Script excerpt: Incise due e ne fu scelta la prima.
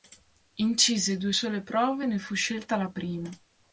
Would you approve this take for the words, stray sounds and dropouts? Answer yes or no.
no